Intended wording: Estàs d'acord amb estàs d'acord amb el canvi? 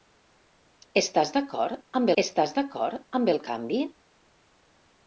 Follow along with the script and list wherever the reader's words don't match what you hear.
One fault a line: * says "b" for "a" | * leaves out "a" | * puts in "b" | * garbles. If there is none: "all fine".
all fine